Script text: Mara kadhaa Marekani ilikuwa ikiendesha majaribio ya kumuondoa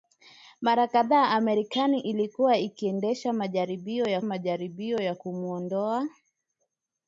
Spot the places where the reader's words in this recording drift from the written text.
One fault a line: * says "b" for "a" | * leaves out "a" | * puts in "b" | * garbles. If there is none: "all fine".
* puts in "majaribio ya"